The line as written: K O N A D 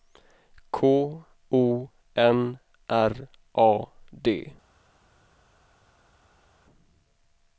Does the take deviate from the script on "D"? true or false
false